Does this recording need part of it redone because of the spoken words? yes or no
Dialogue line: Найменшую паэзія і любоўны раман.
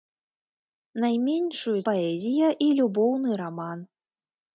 no